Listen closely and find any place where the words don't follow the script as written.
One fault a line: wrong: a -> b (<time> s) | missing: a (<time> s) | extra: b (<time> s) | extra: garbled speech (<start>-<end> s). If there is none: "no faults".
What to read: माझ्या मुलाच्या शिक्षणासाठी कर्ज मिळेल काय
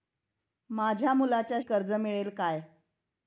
missing: शिक्षणासाठी (1.6 s)